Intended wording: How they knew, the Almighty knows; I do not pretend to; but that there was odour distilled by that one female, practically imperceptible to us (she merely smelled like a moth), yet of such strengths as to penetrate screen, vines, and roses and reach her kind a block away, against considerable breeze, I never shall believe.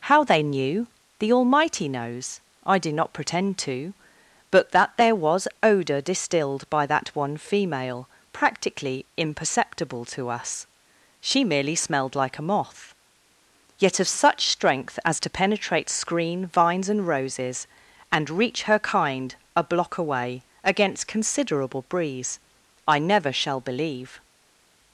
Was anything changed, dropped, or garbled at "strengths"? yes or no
yes